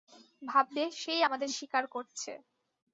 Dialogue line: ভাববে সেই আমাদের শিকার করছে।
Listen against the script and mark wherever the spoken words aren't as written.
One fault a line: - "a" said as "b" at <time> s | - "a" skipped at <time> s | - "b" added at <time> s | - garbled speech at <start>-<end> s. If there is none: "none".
none